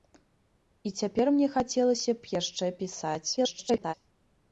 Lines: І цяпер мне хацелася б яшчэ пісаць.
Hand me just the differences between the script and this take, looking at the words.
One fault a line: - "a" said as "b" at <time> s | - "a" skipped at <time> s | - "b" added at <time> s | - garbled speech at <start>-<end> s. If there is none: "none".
- garbled speech at 3.4-3.9 s